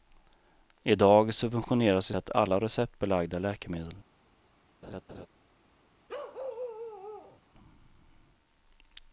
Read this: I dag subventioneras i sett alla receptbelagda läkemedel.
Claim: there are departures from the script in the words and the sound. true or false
true